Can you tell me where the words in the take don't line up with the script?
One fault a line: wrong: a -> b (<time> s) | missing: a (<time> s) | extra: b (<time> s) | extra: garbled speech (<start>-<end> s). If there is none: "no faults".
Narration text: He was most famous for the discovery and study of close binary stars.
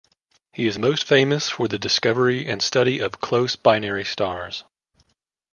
wrong: was -> is (0.7 s)